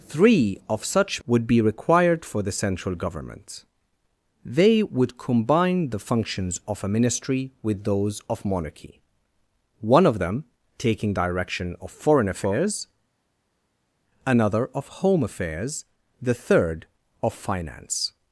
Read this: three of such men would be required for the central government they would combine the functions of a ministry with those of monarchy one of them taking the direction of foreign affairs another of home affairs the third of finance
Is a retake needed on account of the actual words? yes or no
yes